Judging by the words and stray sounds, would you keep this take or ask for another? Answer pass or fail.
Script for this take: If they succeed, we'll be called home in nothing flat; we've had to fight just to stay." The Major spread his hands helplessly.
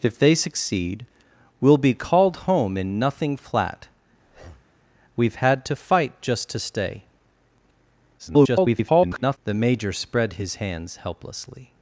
fail